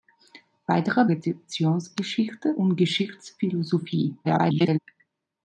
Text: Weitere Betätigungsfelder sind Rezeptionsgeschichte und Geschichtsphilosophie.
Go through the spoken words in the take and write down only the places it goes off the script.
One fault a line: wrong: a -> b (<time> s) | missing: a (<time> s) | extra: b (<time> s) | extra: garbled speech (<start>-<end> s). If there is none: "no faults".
missing: Betätigungsfelder sind (1.1 s)
extra: garbled speech (4.2-4.8 s)